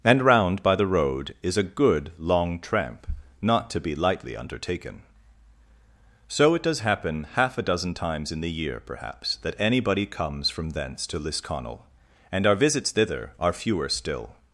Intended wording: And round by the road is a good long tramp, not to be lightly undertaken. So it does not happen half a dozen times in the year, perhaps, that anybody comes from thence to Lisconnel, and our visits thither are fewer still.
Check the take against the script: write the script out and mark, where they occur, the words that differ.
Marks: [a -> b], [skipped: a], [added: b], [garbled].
And round by the road is a good long tramp, not to be lightly undertaken. So it does [skipped: not] happen half a dozen times in the year, perhaps, that anybody comes from thence to Lisconnel, and our visits thither are fewer still.